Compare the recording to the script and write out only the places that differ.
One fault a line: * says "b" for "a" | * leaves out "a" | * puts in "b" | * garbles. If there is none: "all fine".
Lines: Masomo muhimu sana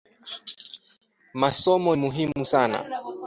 all fine